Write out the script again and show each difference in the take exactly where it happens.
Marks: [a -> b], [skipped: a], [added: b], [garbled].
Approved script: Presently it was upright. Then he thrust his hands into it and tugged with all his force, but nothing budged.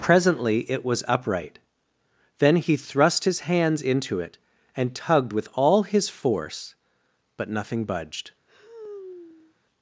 Presently it was upright. Then he thrust his hands into it and tugged with all his force, but nothing budged.